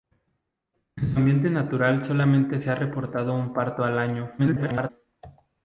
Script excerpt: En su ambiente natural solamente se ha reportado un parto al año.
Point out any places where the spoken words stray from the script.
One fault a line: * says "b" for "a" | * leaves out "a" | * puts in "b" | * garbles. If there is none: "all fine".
* garbles